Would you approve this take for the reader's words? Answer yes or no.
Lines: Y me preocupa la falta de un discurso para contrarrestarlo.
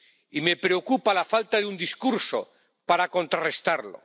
yes